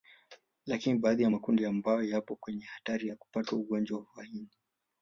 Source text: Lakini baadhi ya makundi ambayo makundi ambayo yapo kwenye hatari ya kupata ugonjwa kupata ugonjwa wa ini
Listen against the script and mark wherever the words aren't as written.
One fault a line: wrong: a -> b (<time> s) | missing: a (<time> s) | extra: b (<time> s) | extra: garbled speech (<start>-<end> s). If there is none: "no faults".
missing: makundi ambayo (2.0 s)
missing: kupata ugonjwa (4.1 s)